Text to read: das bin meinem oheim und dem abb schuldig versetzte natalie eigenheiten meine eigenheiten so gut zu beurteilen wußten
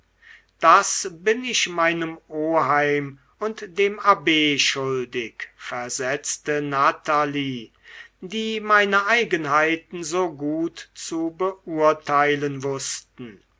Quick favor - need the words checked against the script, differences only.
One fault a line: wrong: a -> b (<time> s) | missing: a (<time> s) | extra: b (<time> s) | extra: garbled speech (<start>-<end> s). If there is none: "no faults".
extra: ich (1.4 s)
wrong: eigenheiten -> die (8.2 s)